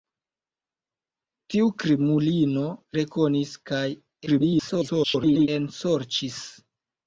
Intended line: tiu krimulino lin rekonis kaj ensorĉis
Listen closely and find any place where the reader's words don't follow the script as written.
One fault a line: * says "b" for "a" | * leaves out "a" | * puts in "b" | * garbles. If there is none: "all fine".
* leaves out "lin"
* garbles